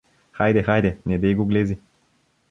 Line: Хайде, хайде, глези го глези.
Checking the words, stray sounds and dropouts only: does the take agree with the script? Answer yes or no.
no